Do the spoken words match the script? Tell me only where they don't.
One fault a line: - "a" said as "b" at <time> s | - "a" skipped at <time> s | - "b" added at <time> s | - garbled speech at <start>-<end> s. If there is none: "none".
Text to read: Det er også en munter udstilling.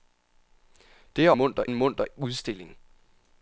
- "også" said as "munter" at 1.3 s